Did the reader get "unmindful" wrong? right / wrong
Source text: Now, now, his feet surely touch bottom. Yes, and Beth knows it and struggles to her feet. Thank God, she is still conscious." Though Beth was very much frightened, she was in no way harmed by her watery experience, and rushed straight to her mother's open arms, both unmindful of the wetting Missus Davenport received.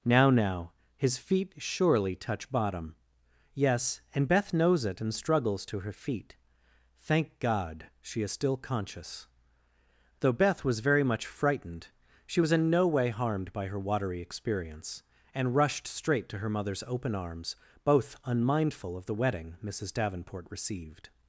right